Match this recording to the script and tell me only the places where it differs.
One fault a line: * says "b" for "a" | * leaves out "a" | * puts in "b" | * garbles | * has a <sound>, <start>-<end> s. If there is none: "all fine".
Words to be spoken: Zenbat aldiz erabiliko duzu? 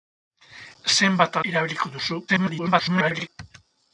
* leaves out "aldiz"
* garbles